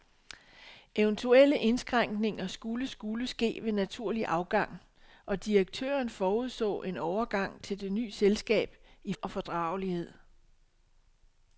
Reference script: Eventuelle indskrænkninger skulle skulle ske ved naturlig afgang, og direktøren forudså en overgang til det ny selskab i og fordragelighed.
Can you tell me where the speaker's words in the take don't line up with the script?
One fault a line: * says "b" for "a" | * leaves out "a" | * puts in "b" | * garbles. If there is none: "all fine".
all fine